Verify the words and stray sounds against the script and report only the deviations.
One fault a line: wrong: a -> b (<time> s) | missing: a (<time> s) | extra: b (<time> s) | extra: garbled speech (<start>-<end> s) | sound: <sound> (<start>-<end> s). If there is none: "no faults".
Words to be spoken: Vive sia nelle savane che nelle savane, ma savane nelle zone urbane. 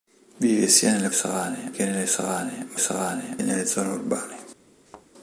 sound: thud (4.9-5.1 s)